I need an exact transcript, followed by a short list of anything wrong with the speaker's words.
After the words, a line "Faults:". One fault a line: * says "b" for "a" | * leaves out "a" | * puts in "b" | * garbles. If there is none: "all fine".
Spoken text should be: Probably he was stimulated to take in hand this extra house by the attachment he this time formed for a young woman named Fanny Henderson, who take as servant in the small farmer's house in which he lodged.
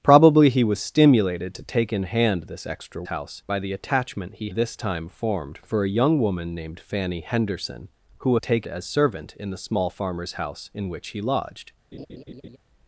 Probably he was stimulated to take in hand this extra house by the attachment he this time formed for a young woman named Fanny Henderson, who take as servant in the small farmer's house in which he lodged.
Faults:
all fine